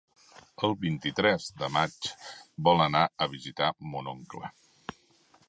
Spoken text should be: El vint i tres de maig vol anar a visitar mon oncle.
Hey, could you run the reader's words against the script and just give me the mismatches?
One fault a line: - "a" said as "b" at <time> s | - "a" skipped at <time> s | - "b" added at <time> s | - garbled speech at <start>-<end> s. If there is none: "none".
none